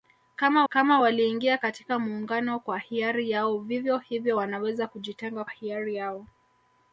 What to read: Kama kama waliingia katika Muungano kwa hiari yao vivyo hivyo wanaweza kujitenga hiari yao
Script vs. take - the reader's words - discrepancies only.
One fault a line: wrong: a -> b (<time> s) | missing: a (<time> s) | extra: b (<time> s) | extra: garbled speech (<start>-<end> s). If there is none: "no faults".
no faults